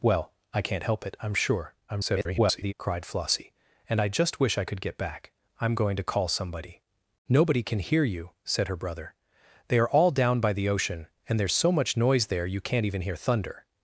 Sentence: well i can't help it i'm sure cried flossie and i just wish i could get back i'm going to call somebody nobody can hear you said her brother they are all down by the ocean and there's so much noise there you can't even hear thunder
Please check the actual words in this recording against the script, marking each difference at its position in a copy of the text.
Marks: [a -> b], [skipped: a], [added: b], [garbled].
well i can't help it i'm sure [garbled] cried flossie and i just wish i could get back i'm going to call somebody nobody can hear you said her brother they are all down by the ocean and there's so much noise there you can't even hear thunder